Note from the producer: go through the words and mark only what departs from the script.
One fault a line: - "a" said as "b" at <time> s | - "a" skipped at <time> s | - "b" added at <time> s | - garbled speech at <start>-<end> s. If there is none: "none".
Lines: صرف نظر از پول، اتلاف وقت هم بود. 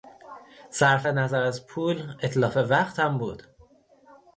none